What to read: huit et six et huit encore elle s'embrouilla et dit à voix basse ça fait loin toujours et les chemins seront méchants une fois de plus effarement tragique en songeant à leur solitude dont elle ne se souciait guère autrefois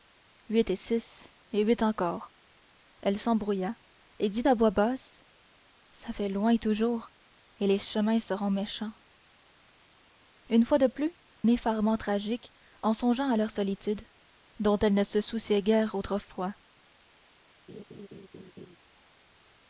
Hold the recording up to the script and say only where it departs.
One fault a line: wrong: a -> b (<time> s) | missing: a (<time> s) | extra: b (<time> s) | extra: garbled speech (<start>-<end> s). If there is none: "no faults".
no faults